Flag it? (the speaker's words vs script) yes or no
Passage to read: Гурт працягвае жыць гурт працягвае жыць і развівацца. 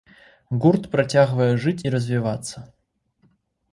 yes